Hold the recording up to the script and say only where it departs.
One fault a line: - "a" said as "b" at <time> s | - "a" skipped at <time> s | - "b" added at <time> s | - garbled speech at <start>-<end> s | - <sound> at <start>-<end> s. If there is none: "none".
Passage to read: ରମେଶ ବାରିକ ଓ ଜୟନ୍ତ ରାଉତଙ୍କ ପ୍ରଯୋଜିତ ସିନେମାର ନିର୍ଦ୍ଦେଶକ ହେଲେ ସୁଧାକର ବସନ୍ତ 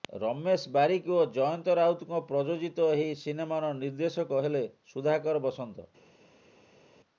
- "ଏହି" added at 2.9 s